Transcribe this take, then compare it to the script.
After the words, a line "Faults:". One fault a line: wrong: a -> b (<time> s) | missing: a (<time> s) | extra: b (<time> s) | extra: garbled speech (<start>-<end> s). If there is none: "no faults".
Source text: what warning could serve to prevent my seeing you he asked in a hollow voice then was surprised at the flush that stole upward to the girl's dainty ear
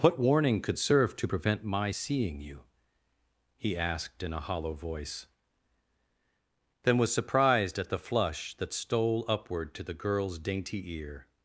what warning could serve to prevent my seeing you he asked in a hollow voice then was surprised at the flush that stole upward to the girl's dainty ear
Faults:
no faults